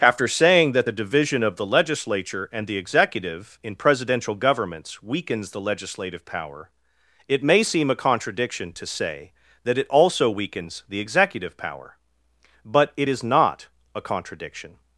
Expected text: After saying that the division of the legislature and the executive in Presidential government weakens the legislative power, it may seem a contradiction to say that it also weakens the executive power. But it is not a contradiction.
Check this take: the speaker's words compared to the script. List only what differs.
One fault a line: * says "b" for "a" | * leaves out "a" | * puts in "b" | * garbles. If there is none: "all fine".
* says "governments" for "government"